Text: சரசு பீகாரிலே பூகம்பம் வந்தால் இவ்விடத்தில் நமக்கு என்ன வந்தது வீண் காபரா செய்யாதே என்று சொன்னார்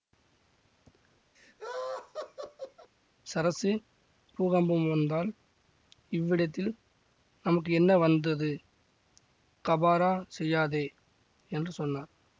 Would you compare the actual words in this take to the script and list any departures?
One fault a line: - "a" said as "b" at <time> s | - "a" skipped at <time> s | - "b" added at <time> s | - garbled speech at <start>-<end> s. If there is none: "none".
- "பீகாரிலே" skipped at 3.7 s
- "வீண்" skipped at 8.5 s